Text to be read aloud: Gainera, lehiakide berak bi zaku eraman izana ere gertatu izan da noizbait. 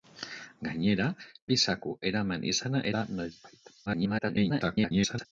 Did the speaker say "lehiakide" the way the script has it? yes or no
no